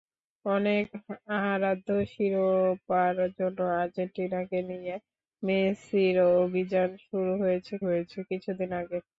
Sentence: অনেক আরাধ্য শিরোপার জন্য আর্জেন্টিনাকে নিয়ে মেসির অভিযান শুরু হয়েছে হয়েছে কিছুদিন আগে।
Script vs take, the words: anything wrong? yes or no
no